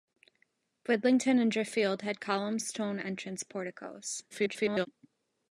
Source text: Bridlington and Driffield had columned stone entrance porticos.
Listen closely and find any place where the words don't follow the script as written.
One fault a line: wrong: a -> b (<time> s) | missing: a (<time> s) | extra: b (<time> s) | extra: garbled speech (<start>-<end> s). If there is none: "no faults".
extra: garbled speech (4.3-4.9 s)